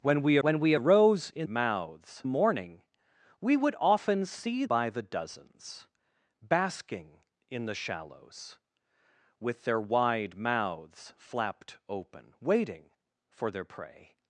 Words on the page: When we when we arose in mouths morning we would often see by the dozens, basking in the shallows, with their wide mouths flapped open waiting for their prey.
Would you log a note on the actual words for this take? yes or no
no